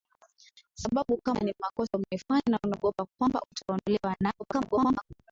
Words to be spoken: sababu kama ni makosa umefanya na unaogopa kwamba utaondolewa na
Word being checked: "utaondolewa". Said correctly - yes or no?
yes